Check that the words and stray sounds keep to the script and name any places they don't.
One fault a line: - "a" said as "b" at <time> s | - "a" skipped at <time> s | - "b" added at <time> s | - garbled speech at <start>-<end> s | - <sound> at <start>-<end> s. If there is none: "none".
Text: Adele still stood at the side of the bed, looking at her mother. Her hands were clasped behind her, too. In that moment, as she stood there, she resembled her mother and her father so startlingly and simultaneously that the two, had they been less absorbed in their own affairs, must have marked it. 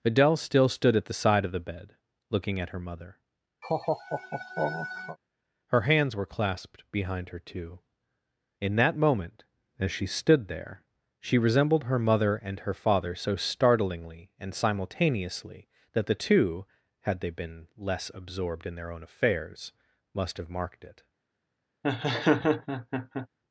- laugh at 3.6-5.2 s
- laugh at 21.8-23.3 s